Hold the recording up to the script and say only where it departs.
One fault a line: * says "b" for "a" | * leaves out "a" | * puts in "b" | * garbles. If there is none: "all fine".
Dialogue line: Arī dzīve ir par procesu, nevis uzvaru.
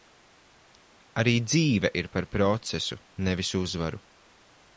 all fine